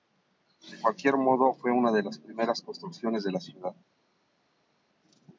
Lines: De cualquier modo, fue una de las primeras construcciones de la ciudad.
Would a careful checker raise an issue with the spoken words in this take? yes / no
no